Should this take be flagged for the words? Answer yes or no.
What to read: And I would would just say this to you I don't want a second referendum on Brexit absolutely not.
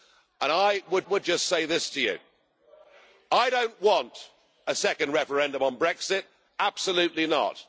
no